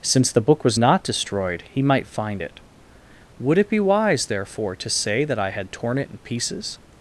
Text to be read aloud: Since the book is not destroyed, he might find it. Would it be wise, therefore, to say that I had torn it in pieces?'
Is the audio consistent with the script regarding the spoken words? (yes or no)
no